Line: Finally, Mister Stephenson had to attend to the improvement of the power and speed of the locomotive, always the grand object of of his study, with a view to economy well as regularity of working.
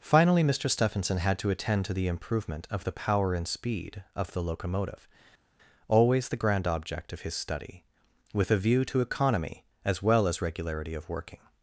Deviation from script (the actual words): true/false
true